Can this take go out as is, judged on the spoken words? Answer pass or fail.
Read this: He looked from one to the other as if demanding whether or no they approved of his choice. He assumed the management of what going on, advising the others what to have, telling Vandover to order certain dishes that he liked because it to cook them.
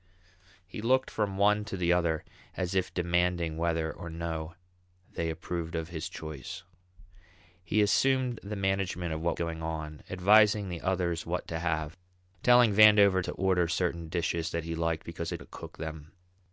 pass